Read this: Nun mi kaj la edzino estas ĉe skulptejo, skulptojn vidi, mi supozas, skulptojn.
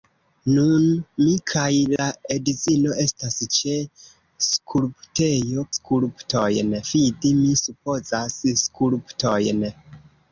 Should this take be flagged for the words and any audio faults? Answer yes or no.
yes